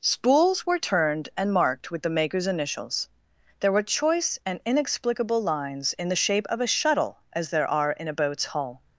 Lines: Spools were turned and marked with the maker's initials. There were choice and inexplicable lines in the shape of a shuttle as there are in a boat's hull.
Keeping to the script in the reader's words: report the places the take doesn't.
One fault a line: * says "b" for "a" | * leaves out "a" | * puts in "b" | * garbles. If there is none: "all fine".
all fine